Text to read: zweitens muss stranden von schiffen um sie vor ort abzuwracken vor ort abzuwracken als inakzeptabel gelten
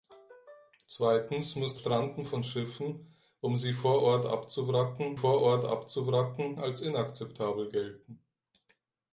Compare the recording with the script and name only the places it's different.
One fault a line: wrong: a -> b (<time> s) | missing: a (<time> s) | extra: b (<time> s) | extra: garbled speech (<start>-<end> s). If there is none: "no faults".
no faults